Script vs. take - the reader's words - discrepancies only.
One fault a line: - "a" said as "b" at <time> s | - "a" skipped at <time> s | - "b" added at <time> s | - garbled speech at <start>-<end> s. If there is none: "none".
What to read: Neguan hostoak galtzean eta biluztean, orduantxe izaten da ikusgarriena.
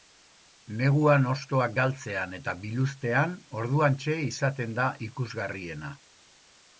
none